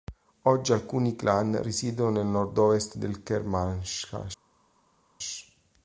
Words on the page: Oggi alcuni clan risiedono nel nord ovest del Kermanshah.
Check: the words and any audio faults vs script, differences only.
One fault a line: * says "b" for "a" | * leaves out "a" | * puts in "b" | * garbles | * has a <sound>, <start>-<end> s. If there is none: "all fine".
all fine